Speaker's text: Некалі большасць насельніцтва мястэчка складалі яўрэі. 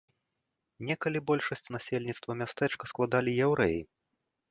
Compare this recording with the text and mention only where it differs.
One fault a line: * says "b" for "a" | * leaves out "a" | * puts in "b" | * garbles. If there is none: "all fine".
all fine